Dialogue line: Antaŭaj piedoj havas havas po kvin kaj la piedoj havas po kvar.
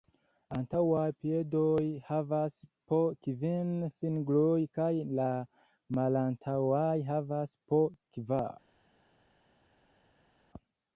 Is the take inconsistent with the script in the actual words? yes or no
yes